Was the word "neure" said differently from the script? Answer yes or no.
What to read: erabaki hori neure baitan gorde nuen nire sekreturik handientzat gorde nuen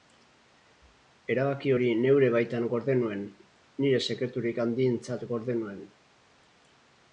no